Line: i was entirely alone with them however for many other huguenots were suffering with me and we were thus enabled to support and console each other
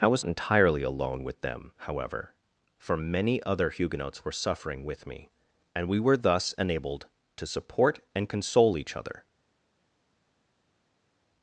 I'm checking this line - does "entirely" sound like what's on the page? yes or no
yes